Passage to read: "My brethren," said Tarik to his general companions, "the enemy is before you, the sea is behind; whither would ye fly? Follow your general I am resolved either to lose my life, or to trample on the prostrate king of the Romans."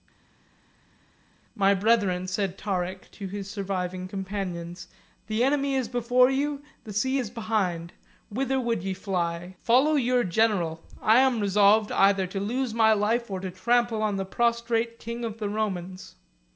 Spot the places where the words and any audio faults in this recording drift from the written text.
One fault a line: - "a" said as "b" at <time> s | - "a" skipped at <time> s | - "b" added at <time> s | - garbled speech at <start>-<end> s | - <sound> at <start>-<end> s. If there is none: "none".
- "general" said as "surviving" at 3.5 s